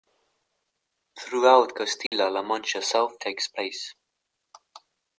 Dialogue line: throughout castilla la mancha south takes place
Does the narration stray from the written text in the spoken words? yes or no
no